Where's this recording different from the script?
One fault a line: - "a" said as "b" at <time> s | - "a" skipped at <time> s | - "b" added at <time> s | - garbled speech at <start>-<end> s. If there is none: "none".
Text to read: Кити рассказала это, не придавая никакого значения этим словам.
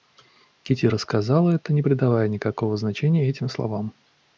none